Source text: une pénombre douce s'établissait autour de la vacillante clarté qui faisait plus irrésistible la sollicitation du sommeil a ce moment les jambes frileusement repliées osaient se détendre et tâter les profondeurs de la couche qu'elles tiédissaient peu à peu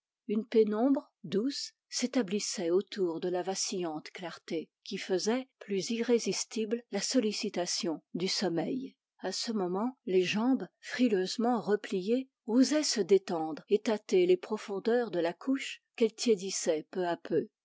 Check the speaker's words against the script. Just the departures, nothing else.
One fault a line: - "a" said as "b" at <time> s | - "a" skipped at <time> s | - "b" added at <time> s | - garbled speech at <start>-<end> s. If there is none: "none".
none